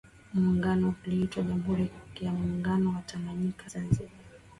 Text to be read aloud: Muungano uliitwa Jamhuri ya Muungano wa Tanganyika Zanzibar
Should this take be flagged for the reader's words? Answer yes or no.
no